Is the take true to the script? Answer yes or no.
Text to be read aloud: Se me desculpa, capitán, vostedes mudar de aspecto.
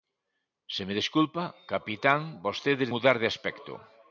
yes